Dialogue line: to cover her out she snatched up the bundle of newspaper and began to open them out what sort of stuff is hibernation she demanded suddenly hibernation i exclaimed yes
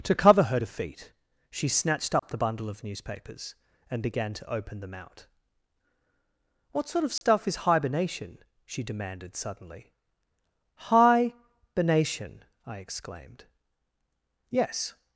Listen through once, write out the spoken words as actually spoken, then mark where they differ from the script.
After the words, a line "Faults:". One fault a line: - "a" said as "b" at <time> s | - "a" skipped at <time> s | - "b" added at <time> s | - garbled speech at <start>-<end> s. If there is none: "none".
to cover her defeat she snatched up the bundle of newspapers and began to open them out what sort of stuff is hibernation she demanded suddenly hibernation i exclaimed yes
Faults:
- "out" said as "defeat" at 0.6 s
- "newspaper" said as "newspapers" at 2.8 s